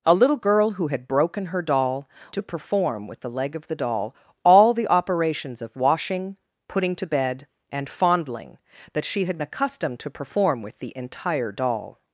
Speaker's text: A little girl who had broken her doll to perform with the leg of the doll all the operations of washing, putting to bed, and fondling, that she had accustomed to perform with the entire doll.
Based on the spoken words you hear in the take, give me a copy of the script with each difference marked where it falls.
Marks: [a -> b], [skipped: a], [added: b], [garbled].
A little girl who had broken her doll to perform with the leg of the doll all the operations of washing, putting to bed, and fondling, that she had accustomed to perform with the entire doll.